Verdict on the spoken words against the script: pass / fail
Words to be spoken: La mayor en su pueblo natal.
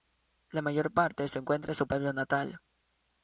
fail